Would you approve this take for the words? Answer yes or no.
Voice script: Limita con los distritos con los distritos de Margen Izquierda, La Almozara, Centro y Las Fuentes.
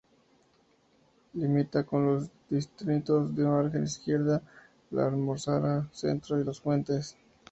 no